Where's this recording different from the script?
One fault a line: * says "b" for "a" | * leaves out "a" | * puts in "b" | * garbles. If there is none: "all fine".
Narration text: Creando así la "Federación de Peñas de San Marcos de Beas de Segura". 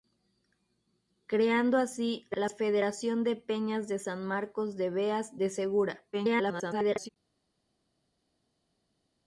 * garbles